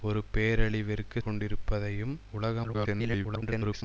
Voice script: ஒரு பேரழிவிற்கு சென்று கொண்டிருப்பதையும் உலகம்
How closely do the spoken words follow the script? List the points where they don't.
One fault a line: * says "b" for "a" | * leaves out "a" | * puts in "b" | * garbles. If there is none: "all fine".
* leaves out "சென்று"
* garbles